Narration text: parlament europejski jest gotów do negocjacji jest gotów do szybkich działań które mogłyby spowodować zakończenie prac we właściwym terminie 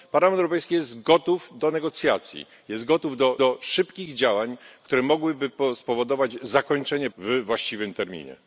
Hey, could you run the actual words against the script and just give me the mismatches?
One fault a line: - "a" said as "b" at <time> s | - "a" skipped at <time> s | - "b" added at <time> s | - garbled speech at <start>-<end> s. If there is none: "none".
- "do" added at 3.4 s
- "prac" skipped at 7.1 s